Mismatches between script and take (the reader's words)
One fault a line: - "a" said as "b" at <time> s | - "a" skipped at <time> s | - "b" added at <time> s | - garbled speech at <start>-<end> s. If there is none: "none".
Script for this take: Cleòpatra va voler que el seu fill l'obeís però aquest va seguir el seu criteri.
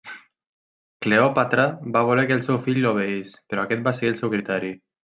none